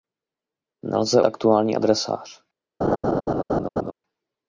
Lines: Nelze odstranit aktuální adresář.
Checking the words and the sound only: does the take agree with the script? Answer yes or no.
no